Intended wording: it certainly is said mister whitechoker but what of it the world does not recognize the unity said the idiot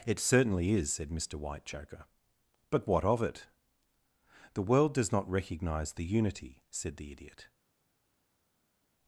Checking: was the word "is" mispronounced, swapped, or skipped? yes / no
no